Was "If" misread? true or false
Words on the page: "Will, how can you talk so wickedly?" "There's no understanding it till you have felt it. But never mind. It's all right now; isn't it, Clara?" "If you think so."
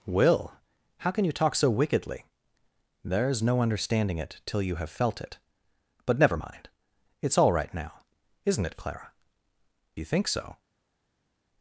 true